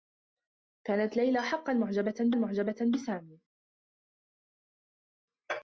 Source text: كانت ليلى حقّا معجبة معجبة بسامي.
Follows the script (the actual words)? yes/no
yes